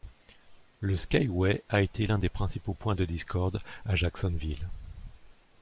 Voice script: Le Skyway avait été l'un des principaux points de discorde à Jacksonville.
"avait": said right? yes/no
no